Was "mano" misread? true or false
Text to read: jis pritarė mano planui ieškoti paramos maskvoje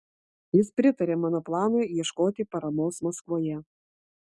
false